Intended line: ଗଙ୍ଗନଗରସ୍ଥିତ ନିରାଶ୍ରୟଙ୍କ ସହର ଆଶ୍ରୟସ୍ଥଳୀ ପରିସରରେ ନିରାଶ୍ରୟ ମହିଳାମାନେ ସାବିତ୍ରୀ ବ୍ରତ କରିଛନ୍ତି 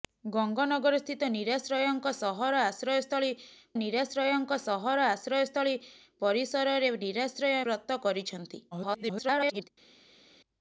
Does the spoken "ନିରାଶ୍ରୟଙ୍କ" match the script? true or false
true